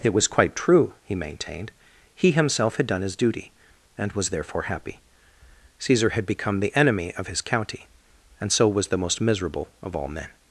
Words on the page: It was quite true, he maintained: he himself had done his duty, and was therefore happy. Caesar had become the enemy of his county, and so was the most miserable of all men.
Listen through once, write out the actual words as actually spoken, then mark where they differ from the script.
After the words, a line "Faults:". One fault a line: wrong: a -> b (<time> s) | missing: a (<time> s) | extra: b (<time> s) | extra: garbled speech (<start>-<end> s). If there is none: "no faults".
It was quite true, he maintained: he himself had done his duty, and was therefore happy. Caesar had become the enemy of his county, and so was the most miserable of all men.
Faults:
no faults